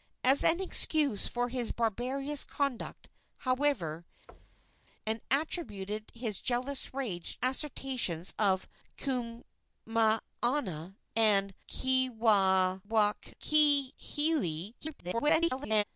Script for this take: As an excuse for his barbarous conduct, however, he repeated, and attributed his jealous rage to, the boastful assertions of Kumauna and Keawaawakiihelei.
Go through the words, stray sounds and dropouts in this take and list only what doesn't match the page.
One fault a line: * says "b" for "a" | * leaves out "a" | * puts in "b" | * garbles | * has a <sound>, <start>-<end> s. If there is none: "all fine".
* leaves out "he repeated"
* has a thud, 4.3-4.9 s
* leaves out "to the boastful"
* garbles